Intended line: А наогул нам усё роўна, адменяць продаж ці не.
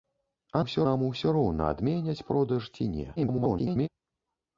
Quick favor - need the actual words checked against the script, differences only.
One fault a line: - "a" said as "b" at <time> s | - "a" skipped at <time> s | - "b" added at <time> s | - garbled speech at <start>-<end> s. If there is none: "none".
- "наогул" said as "усё" at 0.6 s
- garbled speech at 3.2-3.9 s